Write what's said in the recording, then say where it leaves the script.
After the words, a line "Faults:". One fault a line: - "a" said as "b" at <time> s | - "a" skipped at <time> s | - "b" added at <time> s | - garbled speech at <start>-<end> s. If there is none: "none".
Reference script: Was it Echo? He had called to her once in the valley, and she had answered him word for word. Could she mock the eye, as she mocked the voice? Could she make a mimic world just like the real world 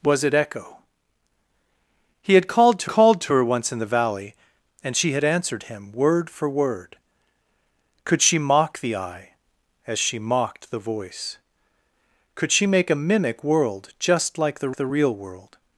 Was it Echo? He had called to called to her once in the valley, and she had answered him word for word. Could she mock the eye, as she mocked the voice? Could she make a mimic world just like the the real world
Faults:
- "called to" added at 2.9 s
- "the" added at 14.8 s